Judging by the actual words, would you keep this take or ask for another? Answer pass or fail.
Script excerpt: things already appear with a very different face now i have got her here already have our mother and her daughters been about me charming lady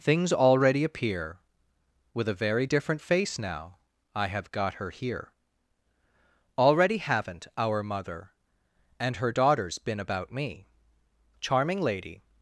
fail